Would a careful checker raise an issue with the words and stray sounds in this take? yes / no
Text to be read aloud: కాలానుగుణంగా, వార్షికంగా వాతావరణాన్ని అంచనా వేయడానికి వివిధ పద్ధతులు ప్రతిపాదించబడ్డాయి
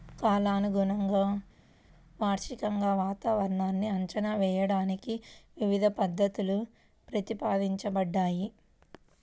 no